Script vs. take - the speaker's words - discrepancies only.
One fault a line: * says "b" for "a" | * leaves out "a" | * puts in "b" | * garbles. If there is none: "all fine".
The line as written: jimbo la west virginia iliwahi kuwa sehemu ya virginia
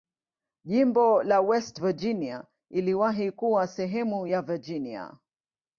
all fine